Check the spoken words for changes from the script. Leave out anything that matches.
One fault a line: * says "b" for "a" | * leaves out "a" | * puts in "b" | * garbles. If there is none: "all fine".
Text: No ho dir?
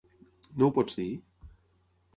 * puts in "pots"